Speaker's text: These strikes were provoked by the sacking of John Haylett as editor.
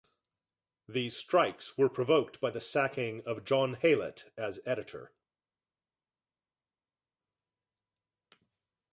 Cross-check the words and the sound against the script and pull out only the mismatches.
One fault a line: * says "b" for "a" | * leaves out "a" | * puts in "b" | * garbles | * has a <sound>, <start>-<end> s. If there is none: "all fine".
all fine